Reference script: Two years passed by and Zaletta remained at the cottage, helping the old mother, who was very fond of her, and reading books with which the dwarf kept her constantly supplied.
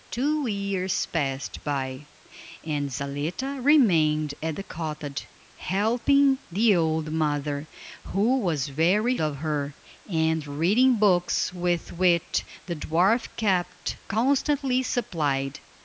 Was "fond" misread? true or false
true